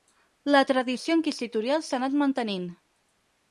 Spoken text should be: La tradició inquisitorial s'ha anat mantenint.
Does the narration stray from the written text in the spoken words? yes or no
no